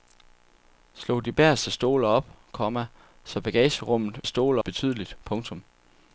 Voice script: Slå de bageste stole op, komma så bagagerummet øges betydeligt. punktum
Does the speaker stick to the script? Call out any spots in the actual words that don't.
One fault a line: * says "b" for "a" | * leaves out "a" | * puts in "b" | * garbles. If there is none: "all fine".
* says "stole" for "øges"